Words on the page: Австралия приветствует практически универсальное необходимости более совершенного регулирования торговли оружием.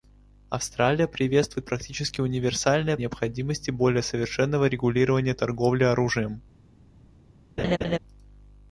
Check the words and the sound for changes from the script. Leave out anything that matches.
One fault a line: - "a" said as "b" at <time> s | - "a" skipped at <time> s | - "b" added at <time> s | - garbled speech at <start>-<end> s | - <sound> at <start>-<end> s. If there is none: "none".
- laugh at 7.6-8.0 s